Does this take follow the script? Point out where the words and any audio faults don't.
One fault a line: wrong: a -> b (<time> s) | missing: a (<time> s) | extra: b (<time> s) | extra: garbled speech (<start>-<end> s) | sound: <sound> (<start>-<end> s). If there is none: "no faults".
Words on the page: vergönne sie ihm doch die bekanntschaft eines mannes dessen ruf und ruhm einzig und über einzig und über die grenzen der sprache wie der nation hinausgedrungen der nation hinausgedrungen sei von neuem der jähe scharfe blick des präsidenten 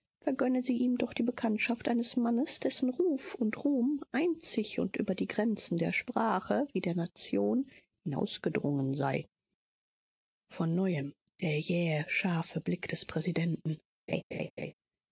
missing: einzig und über (5.1 s)
missing: der nation hinausgedrungen (8.9 s)
sound: laugh (14.1-14.7 s)